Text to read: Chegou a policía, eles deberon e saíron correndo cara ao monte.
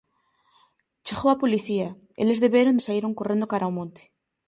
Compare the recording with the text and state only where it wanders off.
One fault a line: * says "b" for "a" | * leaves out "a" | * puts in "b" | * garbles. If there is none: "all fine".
all fine